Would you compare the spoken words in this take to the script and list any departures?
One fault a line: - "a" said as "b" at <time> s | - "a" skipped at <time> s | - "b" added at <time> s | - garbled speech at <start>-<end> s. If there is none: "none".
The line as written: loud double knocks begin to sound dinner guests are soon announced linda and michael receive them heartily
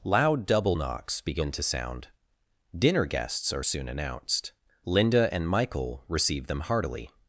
none